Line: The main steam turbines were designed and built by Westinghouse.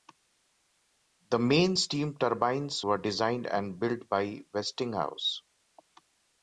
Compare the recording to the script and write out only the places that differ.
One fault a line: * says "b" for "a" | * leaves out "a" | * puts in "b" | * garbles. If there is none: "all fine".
all fine